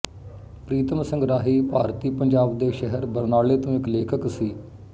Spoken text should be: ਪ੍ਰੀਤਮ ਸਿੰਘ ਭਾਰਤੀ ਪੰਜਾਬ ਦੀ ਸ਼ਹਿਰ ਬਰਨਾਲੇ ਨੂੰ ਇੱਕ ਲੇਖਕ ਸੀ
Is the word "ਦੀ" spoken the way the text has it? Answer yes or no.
no